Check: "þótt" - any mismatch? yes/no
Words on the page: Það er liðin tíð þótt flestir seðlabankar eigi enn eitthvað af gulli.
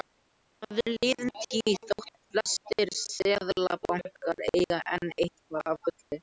no